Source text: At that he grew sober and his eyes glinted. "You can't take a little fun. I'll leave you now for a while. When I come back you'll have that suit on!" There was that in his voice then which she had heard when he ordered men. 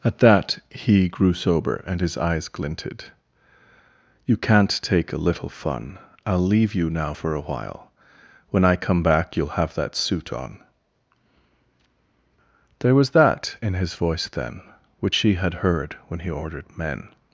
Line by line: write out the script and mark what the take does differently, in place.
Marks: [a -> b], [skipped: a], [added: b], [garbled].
At that he grew sober and his eyes glinted. "You can't take a little fun. I'll leave you now for a while. When I come back you'll have that suit on!" There was that in his voice then which she had heard when he ordered men.